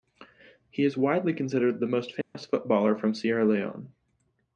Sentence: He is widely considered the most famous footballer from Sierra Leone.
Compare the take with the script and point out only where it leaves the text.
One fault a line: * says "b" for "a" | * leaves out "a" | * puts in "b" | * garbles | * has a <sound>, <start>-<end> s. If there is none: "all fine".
* has a dropout, 2.2-2.4 s